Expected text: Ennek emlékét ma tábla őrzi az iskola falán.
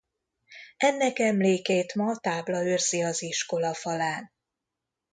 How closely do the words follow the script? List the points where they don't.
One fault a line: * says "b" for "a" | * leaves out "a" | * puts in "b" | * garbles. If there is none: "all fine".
all fine